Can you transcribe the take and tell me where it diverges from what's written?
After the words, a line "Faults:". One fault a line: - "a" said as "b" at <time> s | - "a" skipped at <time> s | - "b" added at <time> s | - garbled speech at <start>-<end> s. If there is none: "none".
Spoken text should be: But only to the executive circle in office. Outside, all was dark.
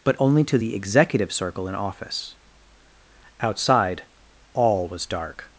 But only to the executive circle in office. Outside, all was dark.
Faults:
none